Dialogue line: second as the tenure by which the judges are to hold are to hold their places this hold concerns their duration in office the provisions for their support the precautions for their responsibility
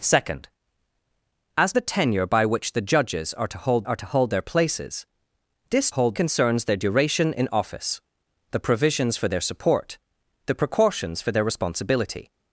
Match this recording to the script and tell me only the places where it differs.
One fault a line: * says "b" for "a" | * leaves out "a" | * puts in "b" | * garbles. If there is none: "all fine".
all fine